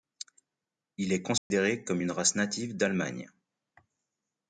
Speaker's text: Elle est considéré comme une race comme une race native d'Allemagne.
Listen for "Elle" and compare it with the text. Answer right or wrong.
wrong